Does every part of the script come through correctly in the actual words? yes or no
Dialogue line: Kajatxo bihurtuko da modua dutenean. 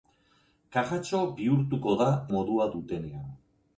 yes